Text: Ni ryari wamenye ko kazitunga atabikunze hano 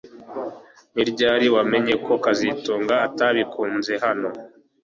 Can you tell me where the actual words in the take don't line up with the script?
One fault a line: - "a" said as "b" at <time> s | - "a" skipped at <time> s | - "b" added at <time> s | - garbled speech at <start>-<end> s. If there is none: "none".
none